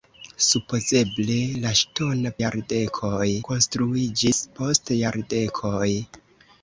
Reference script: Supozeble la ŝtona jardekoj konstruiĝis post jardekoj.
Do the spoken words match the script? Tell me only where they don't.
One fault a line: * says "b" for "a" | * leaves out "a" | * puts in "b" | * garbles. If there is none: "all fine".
all fine